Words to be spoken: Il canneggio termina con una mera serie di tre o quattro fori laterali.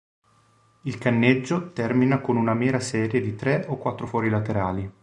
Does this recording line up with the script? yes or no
yes